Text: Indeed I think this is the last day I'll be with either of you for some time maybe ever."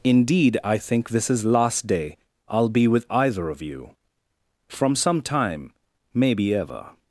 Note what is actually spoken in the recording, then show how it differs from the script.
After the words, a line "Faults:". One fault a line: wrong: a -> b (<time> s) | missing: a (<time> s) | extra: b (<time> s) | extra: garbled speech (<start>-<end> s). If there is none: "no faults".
Indeed I think this is last day I'll be with either of you from some time maybe ever."
Faults:
missing: the (1.4 s)
wrong: for -> from (4.7 s)